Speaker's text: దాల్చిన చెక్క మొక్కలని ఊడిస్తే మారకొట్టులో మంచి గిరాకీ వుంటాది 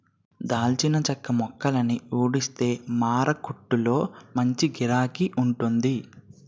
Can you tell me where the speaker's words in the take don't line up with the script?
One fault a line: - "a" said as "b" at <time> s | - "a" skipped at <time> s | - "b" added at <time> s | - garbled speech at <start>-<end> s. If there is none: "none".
none